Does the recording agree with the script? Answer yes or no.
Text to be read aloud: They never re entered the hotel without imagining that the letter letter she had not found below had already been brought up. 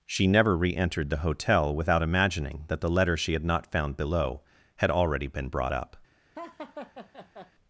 no